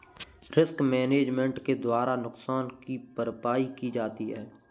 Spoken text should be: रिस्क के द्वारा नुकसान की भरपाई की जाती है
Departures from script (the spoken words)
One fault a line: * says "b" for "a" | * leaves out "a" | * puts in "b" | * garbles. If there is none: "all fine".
* puts in "मैनेजमेंट"